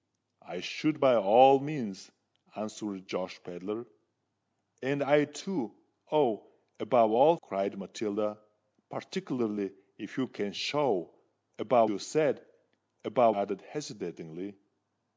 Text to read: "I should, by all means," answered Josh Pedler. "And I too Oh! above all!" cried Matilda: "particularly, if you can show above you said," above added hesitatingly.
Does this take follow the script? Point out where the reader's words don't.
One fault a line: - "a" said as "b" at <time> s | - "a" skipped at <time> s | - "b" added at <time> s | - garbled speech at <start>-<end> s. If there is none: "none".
none